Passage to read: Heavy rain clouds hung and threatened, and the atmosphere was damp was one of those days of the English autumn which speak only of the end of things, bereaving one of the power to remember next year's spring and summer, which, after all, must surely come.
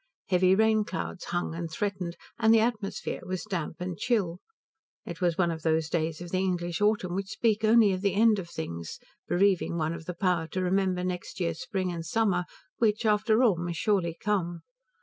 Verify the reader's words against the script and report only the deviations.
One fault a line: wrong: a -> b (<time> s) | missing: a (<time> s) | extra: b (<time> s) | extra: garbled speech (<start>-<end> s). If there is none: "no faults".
extra: and chill It (3.8 s)